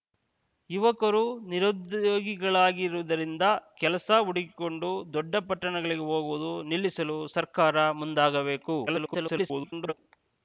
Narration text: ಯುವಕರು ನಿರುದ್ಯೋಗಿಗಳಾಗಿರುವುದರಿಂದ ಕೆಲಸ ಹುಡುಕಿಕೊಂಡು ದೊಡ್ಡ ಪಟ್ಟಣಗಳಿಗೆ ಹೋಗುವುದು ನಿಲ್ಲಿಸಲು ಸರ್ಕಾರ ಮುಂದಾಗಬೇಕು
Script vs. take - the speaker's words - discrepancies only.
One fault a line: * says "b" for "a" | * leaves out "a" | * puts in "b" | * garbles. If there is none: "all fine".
* garbles